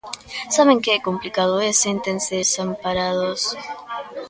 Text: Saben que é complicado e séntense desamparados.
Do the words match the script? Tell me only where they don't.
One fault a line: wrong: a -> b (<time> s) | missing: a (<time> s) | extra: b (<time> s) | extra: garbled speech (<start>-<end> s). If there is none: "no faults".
no faults